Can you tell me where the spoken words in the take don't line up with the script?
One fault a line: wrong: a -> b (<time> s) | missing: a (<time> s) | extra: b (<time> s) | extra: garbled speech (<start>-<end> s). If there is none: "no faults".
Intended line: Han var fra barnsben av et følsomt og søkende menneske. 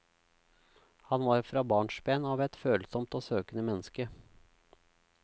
no faults